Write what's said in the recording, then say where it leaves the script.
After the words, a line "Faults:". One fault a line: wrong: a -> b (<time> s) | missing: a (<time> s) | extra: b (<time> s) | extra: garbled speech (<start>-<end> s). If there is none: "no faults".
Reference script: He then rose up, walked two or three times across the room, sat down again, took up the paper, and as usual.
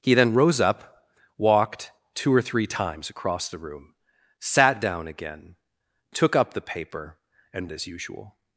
He then rose up, walked two or three times across the room, sat down again, took up the paper, and as usual.
Faults:
no faults